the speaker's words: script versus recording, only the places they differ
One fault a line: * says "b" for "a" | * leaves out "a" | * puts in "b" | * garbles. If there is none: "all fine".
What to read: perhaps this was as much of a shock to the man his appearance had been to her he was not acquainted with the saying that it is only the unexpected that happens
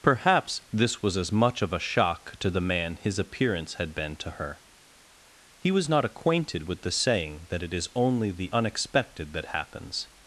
all fine